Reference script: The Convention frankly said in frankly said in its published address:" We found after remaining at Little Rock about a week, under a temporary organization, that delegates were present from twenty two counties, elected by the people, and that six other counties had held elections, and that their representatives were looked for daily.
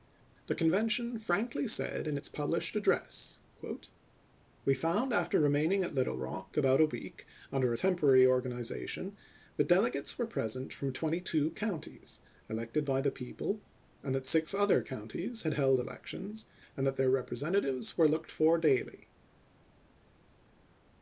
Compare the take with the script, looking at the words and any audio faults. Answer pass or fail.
fail